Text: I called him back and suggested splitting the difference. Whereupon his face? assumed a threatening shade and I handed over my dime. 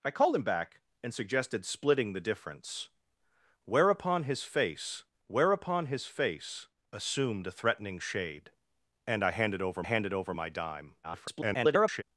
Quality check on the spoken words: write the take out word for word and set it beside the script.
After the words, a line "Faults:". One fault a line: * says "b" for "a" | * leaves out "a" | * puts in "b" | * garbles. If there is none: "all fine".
I called him back and suggested splitting the difference. Whereupon his face whereupon his face? assumed a threatening shade and I handed over handed over my dime. [garbled]
Faults:
* puts in "whereupon his face"
* puts in "handed over"
* garbles